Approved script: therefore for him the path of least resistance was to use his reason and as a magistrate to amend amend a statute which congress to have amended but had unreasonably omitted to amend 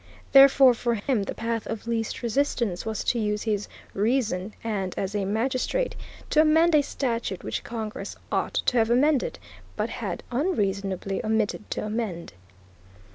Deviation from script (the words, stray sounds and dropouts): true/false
true